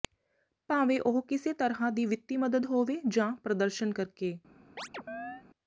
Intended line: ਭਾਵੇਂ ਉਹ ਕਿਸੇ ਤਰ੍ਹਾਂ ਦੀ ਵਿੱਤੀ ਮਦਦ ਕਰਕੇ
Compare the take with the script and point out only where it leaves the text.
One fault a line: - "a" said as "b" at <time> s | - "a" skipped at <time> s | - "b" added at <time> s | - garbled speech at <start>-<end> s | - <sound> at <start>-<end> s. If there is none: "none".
- "ਹੋਵੇ ਜਾਂ ਪ੍ਰਦਰਸ਼ਨ" added at 2.6 s
- chirp at 4.8-5.4 s